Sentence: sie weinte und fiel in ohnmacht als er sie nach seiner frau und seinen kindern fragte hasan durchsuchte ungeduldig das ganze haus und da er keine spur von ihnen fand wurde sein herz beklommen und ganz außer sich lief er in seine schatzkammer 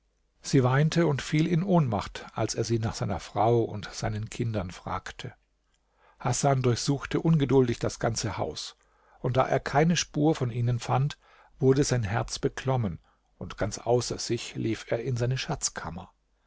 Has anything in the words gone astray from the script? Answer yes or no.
no